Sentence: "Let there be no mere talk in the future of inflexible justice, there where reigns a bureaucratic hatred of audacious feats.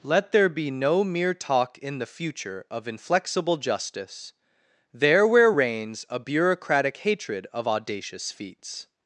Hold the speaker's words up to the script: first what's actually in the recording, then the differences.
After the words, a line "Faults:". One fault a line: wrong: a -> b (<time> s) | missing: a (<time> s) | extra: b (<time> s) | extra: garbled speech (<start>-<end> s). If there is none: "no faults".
"Let there be no mere talk in the future of inflexible justice, there where reigns a bureaucratic hatred of audacious feats.
Faults:
no faults